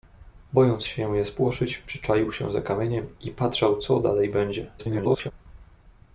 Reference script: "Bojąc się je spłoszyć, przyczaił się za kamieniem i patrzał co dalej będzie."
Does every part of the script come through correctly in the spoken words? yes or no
no